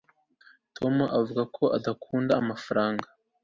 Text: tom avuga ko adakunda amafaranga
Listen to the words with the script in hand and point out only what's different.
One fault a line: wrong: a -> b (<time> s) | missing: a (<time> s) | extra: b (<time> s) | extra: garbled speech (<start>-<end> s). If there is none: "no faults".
no faults